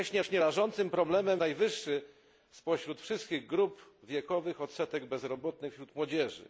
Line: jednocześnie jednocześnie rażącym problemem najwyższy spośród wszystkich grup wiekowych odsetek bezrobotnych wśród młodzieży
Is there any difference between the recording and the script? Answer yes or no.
no